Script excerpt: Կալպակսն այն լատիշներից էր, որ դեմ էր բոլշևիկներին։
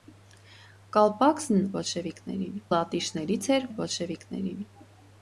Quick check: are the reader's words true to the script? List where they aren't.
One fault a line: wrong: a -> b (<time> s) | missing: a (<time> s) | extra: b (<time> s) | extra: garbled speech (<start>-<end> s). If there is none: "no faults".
wrong: այն -> բոլշևիկներին (1.8 s)
missing: որ դեմ (3.7 s)